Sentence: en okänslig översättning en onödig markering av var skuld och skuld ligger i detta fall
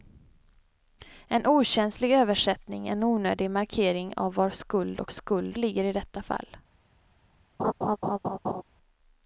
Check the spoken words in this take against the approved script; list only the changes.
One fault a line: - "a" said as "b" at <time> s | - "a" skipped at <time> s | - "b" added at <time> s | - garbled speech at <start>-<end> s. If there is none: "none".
none